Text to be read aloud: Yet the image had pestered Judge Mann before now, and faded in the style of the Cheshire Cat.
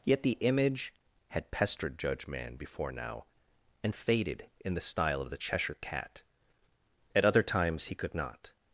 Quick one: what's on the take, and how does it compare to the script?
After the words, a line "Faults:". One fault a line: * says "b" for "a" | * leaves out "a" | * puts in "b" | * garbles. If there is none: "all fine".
Yet the image had pestered Judge Mann before now, and faded in the style of the Cheshire Cat. At other times he could not
Faults:
* puts in "At other times he could not"